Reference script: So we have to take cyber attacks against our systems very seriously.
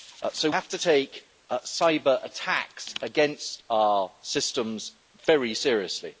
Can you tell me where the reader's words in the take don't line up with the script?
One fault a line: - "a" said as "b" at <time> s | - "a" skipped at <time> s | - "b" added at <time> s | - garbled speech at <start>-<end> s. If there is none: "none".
- "we" skipped at 0.5 s